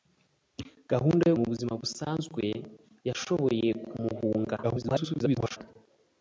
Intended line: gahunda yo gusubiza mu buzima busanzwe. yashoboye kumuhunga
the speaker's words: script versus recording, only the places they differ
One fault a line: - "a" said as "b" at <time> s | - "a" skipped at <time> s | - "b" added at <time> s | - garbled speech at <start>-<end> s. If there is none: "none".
- "gusubiza" skipped at 1.4 s
- garbled speech at 4.6-5.6 s